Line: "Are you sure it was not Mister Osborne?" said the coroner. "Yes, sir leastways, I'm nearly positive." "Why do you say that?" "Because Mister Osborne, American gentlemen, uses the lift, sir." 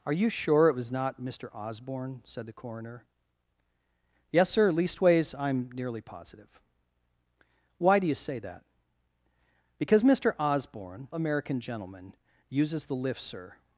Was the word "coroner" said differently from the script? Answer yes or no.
no